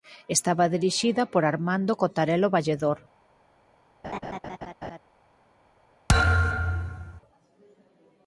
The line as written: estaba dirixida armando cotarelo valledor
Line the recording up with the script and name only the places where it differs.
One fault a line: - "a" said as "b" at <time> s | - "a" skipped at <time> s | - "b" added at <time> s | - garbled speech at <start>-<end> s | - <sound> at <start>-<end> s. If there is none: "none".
- "por" added at 1.3 s
- laugh at 4.0-5.0 s
- thud at 6.1-7.2 s